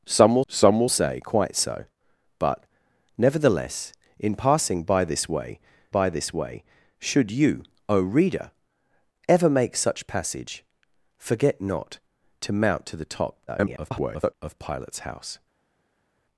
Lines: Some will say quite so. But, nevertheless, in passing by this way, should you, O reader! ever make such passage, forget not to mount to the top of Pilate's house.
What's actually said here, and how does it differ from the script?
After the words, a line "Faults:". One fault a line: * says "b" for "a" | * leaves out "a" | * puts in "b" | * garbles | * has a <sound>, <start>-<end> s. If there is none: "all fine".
Some will some will say quite so. But, nevertheless, in passing by this way by this way, should you, O reader! ever make such passage, forget not to mount to the top [garbled] of Pilate's house.
Faults:
* puts in "some will"
* puts in "by this way"
* garbles